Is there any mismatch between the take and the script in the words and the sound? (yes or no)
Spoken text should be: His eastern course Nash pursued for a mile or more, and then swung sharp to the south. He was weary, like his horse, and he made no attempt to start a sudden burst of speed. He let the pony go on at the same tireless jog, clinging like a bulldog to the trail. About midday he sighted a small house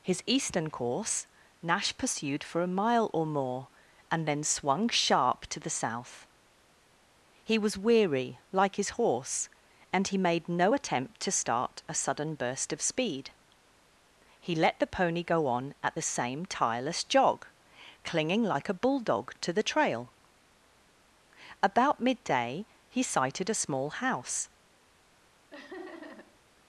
yes